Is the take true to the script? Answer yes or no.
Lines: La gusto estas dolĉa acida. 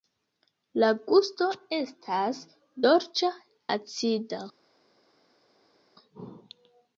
yes